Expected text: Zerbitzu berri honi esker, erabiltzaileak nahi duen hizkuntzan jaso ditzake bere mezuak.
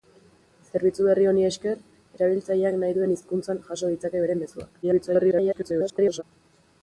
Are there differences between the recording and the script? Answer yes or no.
yes